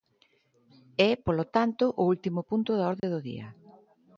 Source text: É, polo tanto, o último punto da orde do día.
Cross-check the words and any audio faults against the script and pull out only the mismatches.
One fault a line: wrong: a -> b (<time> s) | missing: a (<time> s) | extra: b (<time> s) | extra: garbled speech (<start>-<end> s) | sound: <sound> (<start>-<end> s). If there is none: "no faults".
sound: dropout (3.0-3.0 s)